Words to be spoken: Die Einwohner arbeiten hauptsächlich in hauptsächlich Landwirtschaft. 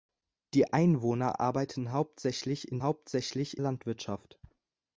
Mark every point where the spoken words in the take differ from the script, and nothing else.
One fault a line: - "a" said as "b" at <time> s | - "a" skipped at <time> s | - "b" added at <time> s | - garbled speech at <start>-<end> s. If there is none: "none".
none